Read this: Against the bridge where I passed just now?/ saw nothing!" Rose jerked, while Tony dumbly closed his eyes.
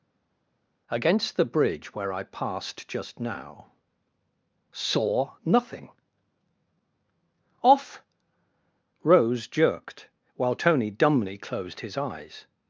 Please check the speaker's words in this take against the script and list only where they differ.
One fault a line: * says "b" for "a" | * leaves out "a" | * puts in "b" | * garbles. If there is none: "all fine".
* puts in "off"